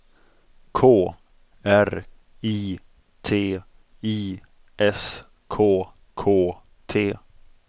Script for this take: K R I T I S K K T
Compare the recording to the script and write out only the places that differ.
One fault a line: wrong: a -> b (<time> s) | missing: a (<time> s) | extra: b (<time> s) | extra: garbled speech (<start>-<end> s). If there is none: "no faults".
no faults